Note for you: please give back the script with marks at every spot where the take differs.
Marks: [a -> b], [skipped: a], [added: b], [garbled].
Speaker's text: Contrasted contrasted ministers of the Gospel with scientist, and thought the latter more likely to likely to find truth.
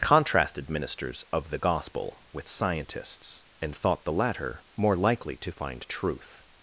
Contrasted [skipped: contrasted] ministers of the Gospel with [scientist, -> scientists] and thought the latter more likely to [skipped: likely to] find truth.